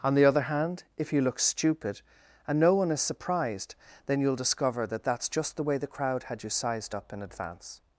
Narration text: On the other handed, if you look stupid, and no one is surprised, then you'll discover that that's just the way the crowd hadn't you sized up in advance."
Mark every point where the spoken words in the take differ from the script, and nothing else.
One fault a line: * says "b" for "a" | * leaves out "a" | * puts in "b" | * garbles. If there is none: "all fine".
* says "hand" for "handed"
* says "had" for "hadn't"